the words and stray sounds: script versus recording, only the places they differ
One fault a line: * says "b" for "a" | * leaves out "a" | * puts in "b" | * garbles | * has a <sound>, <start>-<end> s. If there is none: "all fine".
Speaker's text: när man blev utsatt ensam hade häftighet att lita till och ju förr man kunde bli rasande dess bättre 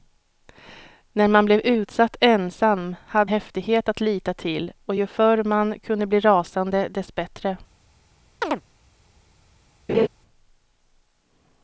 * has a chirp, 8.4-8.6 s
* has a laugh, 9.9-10.1 s